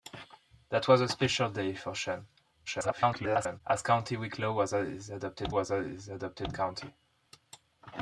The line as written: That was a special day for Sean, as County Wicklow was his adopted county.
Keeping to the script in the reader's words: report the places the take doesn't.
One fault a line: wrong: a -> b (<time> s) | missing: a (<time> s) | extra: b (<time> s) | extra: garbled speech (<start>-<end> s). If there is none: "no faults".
extra: garbled speech (2.7-3.6 s)
extra: was his adopted (5.5 s)